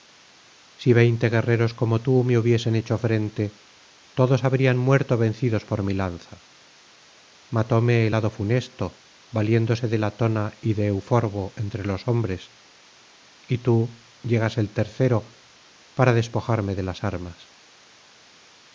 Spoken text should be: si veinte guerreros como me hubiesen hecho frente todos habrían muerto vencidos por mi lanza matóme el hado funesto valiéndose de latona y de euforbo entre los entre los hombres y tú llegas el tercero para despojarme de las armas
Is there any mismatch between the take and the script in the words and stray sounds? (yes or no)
yes